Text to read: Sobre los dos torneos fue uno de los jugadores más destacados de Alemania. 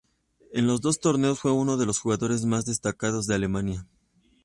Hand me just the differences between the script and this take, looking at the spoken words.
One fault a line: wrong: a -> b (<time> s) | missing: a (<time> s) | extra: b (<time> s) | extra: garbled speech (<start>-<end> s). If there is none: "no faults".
wrong: Sobre -> En (0.5 s)